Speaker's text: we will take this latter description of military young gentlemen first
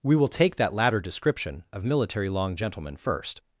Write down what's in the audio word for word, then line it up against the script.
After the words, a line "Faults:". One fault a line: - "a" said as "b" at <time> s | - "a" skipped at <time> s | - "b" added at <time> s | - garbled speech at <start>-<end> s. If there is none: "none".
we will take that latter description of military long gentlemen first
Faults:
- "this" said as "that" at 0.6 s
- "young" said as "long" at 2.3 s